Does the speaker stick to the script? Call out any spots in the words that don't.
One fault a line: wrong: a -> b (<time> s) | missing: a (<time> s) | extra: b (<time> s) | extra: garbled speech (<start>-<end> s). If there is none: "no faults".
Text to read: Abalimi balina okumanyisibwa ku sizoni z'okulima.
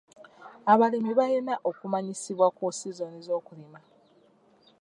no faults